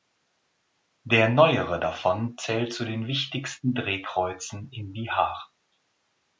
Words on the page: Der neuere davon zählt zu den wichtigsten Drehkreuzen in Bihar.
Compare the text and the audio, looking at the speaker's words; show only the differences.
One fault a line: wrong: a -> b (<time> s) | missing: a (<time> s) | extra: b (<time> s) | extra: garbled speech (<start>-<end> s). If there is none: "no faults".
no faults